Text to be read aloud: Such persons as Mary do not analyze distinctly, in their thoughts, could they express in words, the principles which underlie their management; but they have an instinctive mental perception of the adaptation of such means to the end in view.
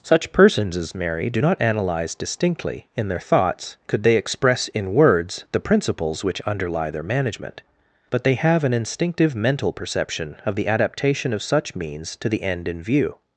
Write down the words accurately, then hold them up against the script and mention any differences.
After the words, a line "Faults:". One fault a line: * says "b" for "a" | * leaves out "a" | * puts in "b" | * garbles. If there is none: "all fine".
Such persons as Mary do not analyze distinctly, in their thoughts, could they express in words, the principles which underlie their management; but they have an instinctive mental perception of the adaptation of such means to the end in view.
Faults:
all fine